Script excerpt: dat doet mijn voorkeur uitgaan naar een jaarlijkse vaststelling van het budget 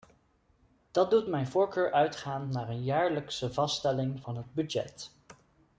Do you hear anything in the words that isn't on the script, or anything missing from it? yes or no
no